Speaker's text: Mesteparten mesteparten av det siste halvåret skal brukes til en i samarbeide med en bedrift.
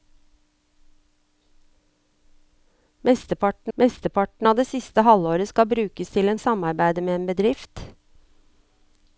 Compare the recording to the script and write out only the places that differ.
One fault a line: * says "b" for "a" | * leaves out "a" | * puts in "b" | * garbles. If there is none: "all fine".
all fine